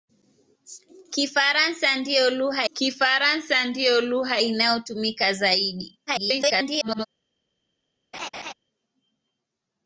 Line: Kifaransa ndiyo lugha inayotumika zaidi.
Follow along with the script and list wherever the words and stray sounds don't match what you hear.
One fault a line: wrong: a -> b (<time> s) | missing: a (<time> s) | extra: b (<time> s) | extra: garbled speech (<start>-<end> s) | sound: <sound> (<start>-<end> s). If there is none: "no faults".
extra: kifaransa ndiyo lugha (2.7 s)
extra: garbled speech (6.1-7.1 s)
sound: laugh (8.1-8.5 s)